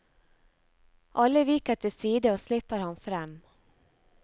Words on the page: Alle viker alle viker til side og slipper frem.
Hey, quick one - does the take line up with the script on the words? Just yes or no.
no